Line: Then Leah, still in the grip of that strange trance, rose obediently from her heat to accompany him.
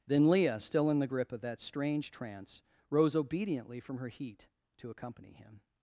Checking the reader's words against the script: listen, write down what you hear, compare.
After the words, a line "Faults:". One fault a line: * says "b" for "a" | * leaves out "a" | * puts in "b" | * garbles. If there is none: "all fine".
Then Leah, still in the grip of that strange trance, rose obediently from her heat to accompany him.
Faults:
all fine